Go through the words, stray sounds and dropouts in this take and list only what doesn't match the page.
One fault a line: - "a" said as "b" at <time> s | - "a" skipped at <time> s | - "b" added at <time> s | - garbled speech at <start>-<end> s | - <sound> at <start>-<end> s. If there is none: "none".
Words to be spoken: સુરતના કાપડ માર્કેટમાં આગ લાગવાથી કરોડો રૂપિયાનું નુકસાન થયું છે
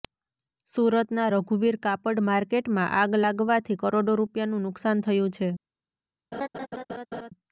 - "રઘુવીર" added at 1.3 s
- laugh at 6.3-7.3 s